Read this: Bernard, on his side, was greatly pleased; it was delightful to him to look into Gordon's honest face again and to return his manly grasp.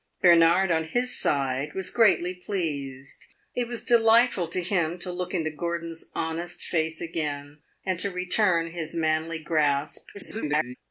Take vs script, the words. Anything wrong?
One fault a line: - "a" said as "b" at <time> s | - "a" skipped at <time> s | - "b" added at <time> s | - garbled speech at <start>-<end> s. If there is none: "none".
- garbled speech at 10.1-10.8 s